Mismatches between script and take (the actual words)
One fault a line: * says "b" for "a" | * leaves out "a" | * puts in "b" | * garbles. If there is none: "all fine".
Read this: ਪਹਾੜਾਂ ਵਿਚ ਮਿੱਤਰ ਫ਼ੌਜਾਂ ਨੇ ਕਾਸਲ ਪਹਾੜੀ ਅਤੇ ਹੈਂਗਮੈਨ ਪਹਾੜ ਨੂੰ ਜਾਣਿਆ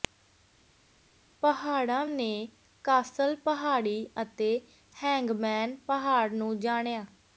* leaves out "ਵਿਚ ਮਿੱਤਰ ਫ਼ੌਜਾਂ"